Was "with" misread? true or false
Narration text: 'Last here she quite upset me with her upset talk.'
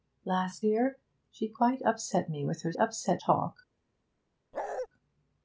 false